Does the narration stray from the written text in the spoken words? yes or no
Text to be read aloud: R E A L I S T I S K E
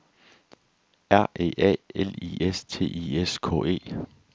no